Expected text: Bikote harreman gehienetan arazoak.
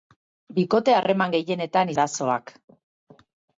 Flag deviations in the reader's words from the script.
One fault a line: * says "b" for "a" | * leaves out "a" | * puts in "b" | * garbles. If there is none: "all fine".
all fine